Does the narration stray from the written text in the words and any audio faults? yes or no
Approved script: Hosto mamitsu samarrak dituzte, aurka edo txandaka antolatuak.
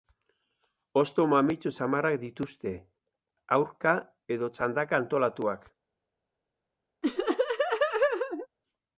yes